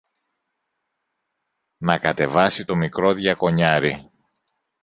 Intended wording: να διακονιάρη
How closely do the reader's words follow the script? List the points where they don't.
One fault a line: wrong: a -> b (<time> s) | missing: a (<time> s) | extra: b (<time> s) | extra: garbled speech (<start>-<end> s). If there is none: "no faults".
extra: κατεβάσει το μικρό (2.0 s)